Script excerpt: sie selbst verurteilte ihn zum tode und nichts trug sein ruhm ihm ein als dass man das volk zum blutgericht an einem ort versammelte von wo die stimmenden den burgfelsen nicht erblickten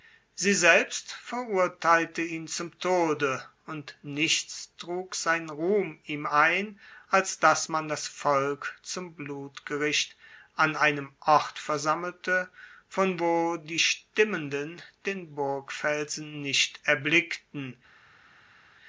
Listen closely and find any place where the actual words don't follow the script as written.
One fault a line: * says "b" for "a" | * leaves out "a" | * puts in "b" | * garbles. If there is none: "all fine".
all fine